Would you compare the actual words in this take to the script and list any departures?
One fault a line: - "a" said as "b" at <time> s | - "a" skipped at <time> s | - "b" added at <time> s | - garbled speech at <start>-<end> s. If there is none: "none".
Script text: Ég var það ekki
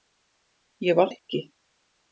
- "það" skipped at 1.1 s